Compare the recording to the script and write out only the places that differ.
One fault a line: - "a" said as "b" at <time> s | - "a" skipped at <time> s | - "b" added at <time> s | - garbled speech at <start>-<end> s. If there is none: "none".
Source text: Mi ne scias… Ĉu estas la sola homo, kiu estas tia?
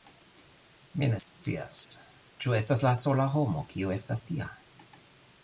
none